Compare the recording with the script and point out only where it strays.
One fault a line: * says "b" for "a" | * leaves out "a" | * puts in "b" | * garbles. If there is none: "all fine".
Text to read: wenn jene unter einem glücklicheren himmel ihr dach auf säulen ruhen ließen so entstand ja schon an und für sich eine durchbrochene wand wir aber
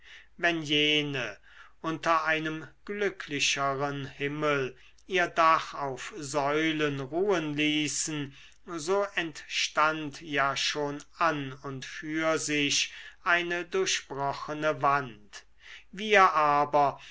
all fine